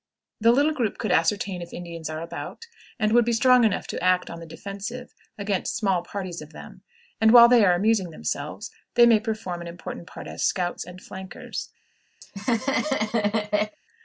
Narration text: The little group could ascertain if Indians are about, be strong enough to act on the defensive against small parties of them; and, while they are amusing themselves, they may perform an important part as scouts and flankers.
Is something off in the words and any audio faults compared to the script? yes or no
yes